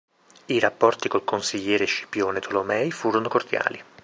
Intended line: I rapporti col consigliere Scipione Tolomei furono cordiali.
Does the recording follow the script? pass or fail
pass